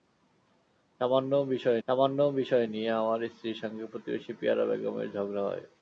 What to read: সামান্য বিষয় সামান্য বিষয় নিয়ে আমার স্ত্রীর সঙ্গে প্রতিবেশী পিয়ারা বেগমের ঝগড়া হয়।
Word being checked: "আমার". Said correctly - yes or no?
yes